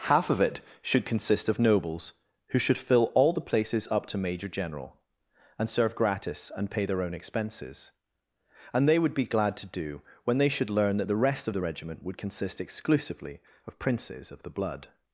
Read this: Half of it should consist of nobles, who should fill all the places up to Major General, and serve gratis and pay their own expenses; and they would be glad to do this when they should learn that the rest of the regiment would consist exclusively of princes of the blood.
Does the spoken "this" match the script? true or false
false